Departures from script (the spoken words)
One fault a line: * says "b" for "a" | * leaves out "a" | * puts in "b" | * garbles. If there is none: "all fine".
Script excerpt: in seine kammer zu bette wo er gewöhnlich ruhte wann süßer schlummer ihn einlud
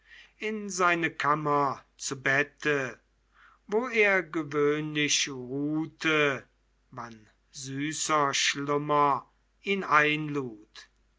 all fine